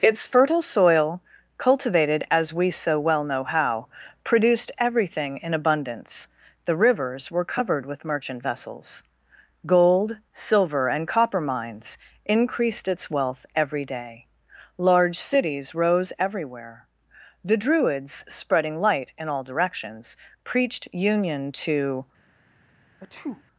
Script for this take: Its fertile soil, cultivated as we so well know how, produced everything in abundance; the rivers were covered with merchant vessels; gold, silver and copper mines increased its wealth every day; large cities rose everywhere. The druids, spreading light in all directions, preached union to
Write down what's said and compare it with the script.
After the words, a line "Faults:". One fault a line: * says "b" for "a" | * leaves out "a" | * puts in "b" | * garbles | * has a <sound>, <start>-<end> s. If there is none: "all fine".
Its fertile soil, cultivated as we so well know how, produced everything in abundance; the rivers were covered with merchant vessels; gold, silver and copper mines increased its wealth every day; large cities rose everywhere. The druids, spreading light in all directions, preached union to
Faults:
* has a sneeze, 23.0-23.4 s